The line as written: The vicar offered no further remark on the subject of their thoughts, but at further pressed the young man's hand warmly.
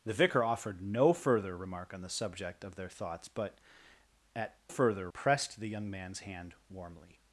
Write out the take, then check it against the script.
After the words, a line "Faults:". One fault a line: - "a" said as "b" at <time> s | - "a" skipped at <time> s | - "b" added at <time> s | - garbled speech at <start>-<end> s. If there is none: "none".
The vicar offered no further remark on the subject of their thoughts, but at further pressed the young man's hand warmly.
Faults:
none